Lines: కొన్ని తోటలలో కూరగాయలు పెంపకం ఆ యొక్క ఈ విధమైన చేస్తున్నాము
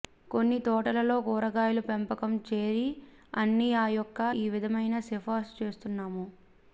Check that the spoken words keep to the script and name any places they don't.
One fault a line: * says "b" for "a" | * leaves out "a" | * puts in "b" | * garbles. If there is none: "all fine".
* puts in "చేరి అన్ని"
* puts in "సిఫార్సు"